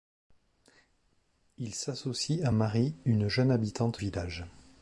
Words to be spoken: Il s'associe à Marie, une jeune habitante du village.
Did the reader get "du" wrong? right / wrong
wrong